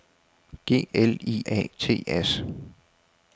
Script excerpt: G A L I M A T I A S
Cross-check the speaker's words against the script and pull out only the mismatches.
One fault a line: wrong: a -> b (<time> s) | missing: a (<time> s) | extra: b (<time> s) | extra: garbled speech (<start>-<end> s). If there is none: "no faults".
missing: A (0.9 s)
missing: M (1.4 s)
missing: I A (2.0 s)